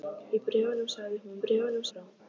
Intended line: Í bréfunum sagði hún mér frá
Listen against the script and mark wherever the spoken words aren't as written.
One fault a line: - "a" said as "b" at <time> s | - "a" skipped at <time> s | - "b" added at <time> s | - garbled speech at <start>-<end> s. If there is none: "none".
- "mér" said as "bréfunum" at 1.4 s